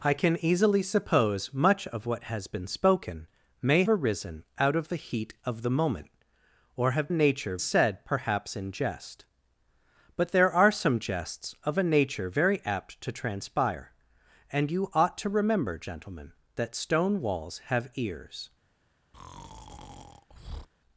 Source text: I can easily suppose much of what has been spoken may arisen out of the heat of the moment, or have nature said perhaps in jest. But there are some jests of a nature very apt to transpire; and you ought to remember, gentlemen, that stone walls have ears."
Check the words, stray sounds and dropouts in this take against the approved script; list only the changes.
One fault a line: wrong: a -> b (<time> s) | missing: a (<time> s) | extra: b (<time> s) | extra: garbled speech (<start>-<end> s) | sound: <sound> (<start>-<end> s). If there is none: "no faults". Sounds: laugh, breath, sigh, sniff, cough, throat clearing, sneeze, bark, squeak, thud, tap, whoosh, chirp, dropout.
sound: breath (19.1-20.7 s)